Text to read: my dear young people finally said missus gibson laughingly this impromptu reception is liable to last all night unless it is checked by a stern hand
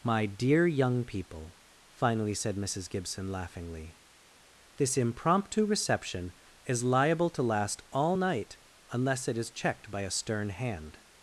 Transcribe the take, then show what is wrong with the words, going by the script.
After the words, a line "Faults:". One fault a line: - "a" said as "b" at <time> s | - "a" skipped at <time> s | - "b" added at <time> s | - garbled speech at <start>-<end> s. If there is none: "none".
my dear young people finally said missus gibson laughingly this impromptu reception is liable to last all night unless it is checked by a stern hand
Faults:
none